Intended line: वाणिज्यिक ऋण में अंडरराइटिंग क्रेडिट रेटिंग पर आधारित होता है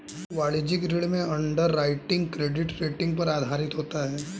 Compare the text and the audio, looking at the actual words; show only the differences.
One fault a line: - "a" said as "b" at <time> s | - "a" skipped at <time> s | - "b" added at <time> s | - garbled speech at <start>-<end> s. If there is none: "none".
none